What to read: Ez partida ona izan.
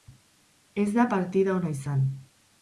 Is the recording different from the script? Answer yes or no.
yes